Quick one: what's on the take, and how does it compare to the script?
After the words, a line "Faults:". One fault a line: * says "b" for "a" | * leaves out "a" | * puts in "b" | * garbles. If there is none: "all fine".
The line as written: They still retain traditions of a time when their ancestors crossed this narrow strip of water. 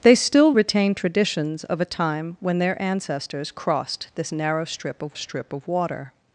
They still retain traditions of a time when their ancestors crossed this narrow strip of strip of water.
Faults:
* puts in "strip of"